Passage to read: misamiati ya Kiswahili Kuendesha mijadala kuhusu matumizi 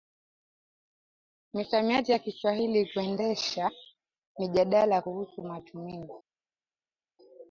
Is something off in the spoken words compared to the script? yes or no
no